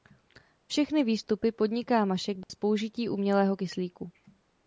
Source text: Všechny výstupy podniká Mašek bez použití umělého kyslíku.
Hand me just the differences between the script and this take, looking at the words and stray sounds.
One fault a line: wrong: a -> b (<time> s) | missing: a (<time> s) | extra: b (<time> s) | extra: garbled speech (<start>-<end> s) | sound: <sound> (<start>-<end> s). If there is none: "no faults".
sound: dropout (2.4-2.5 s)